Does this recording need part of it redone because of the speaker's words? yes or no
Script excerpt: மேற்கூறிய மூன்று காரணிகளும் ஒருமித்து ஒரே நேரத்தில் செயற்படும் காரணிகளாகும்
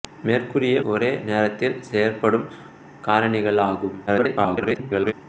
yes